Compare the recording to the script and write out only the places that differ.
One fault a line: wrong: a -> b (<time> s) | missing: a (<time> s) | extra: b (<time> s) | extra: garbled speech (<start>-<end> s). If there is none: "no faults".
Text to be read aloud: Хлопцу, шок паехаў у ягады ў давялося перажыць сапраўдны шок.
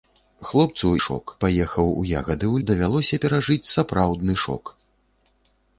no faults